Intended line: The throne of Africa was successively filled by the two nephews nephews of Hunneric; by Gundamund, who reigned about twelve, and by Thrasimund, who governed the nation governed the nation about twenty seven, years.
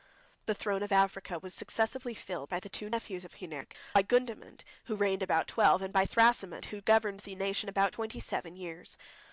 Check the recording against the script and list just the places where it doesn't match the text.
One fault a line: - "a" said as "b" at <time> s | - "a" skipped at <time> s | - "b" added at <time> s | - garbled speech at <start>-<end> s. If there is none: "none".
- "nephews" skipped at 3.2 s
- "governed the nation" skipped at 7.7 s